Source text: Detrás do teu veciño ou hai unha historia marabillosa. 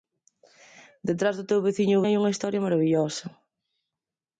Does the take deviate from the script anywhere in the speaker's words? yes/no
no